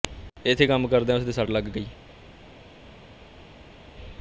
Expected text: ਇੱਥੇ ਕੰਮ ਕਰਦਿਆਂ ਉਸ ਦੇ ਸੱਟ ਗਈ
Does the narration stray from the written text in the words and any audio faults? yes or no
yes